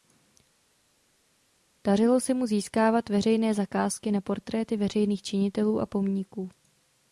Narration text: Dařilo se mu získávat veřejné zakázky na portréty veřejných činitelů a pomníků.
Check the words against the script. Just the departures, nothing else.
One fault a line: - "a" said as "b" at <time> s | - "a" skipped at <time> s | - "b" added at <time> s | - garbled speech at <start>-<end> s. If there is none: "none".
none